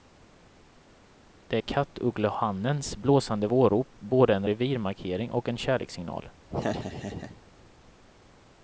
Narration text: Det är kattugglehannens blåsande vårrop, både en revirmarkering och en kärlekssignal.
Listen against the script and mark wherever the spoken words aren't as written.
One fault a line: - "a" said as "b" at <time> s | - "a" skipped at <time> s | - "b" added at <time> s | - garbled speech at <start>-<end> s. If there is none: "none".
none